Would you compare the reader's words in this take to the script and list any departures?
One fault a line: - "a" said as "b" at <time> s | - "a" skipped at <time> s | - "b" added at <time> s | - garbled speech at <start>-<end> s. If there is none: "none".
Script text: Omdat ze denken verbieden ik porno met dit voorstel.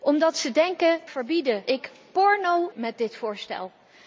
none